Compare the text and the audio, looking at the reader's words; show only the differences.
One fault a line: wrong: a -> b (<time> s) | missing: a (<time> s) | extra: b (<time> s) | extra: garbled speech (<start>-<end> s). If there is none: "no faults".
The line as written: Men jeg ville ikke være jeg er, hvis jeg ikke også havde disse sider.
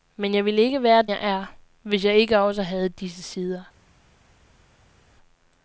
no faults